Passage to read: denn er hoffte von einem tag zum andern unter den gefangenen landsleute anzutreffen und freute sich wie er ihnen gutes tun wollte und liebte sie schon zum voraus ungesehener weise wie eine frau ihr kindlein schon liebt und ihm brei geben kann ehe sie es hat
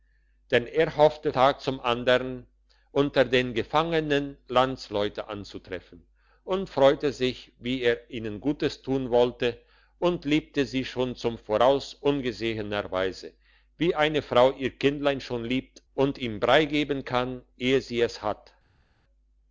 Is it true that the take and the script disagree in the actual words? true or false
true